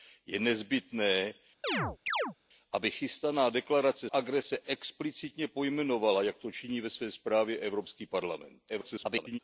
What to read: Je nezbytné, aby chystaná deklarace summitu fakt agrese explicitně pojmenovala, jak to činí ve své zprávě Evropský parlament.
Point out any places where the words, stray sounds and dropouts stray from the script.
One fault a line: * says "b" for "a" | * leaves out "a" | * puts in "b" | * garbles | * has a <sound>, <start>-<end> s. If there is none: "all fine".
* has a chirp, 1.6-2.3 s
* leaves out "summitu fakt"
* garbles